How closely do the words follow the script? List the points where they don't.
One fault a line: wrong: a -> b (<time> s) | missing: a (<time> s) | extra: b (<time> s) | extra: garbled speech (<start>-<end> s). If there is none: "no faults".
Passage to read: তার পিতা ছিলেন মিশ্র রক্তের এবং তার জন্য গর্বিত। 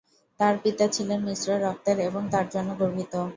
no faults